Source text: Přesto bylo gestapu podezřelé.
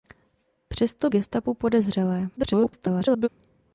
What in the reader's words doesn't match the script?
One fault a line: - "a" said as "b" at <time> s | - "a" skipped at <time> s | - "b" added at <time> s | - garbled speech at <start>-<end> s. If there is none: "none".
- "bylo" skipped at 1.1 s
- garbled speech at 2.4-3.3 s